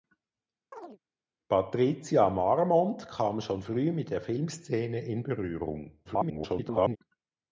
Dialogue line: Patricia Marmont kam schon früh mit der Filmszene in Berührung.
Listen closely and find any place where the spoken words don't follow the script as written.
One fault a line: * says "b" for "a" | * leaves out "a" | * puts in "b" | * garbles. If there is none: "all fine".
* garbles